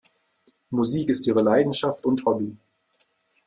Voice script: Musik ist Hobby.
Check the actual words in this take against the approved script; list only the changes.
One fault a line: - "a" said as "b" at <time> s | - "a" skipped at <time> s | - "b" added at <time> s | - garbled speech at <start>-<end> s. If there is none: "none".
- "ihre Leidenschaft und" added at 1.3 s